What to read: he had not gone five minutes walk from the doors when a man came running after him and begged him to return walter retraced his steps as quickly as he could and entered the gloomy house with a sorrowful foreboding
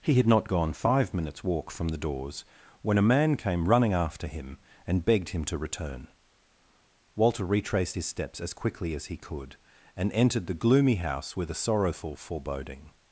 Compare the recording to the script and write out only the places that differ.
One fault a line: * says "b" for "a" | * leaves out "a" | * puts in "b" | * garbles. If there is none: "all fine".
all fine